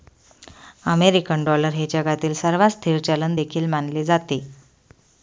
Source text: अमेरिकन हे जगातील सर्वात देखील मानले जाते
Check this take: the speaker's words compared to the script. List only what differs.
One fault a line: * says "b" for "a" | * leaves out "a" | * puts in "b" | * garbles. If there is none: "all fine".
* puts in "डॉलर"
* puts in "स्थिर चलन"